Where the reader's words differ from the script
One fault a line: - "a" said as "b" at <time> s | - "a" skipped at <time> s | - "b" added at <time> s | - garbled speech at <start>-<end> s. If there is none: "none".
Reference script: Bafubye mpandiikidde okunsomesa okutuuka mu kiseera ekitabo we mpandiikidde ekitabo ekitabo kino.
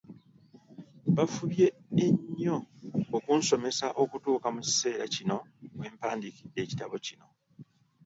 - "mpandiikidde" said as "ennyo" at 2.0 s
- "ekitabo" said as "kino" at 5.1 s
- "ekitabo" skipped at 7.0 s